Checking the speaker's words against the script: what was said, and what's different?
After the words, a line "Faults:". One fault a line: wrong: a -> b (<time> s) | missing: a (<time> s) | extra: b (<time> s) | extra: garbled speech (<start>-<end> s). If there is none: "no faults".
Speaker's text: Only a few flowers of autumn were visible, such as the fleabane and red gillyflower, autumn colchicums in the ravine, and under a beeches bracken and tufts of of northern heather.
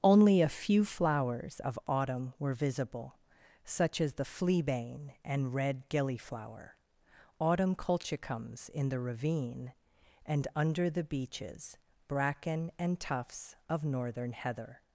Only a few flowers of autumn were visible, such as the fleabane and red gillyflower, autumn colchicums in the ravine, and under the beeches bracken and tufts of northern heather.
Faults:
wrong: a -> the (10.9 s)
missing: of (13.9 s)